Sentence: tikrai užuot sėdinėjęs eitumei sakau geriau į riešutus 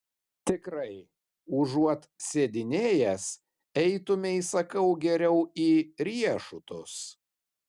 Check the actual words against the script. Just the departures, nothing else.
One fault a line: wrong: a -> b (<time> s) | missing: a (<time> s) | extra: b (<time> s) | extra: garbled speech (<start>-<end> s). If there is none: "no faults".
no faults